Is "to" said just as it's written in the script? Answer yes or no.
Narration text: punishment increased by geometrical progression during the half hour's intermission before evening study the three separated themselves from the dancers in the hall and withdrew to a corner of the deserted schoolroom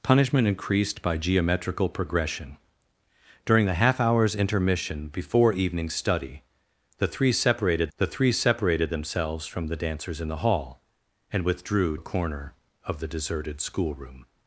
no